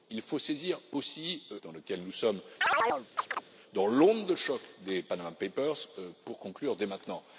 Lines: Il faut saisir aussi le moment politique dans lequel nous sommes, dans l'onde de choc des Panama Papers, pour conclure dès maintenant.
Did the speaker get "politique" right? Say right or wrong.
wrong